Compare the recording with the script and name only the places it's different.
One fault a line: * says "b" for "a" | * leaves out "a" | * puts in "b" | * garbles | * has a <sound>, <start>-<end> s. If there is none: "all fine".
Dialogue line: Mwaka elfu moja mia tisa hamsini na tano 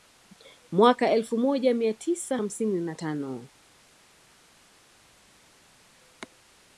all fine